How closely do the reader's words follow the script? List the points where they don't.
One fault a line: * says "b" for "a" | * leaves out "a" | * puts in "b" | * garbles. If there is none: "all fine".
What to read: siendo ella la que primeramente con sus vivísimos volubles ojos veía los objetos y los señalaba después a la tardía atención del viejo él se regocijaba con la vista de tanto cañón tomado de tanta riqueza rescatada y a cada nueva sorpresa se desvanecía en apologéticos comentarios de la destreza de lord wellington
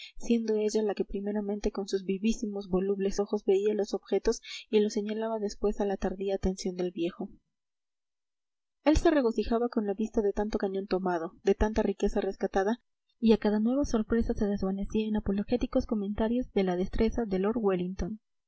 all fine